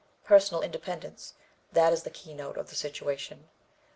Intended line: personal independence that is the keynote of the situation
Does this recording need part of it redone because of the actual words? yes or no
no